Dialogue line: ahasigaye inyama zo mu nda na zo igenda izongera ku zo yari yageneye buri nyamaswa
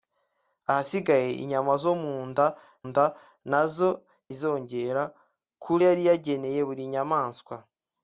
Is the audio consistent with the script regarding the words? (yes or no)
no